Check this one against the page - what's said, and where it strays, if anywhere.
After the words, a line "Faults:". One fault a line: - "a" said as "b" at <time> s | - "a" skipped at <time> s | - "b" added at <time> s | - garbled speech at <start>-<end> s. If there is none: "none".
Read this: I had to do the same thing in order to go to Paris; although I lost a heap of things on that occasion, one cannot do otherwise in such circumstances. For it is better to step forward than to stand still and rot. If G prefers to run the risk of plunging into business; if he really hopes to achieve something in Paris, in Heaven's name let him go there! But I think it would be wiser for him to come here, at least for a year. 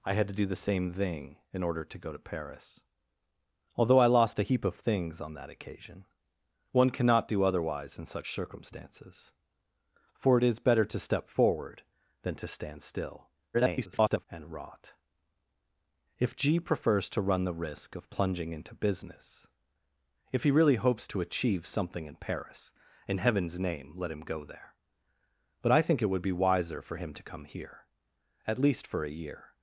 I had to do the same thing in order to go to Paris; although I lost a heap of things on that occasion, one cannot do otherwise in such circumstances. For it is better to step forward than to stand still [garbled] and rot. If G prefers to run the risk of plunging into business; if he really hopes to achieve something in Paris, in Heaven's name let him go there! But I think it would be wiser for him to come here, at least for a year.
Faults:
- garbled speech at 13.5-14.3 s